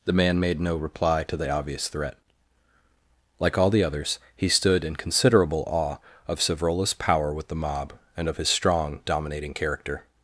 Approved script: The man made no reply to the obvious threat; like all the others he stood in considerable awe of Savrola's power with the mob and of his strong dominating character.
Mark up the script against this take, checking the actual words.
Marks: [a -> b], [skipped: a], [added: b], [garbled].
The man made no reply to the obvious threat; like all the others he stood in considerable awe of Savrola's power with the mob and of his strong dominating character.